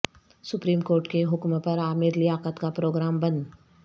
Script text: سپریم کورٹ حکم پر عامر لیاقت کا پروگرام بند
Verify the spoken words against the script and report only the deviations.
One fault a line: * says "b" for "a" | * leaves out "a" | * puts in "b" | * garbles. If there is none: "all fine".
* puts in "کے"